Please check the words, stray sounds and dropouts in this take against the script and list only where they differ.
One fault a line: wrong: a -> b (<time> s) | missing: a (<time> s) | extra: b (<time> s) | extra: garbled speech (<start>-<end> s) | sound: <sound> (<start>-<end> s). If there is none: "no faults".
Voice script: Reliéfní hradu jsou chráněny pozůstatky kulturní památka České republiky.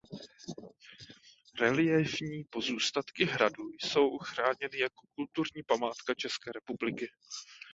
extra: pozůstatky (2.4 s)
wrong: pozůstatky -> jako (4.8 s)